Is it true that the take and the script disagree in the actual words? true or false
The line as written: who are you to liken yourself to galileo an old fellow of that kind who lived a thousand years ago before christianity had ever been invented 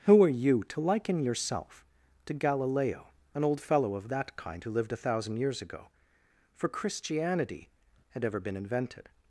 true